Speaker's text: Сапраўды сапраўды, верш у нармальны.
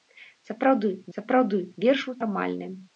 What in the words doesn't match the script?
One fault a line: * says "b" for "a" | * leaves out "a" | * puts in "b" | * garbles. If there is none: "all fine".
all fine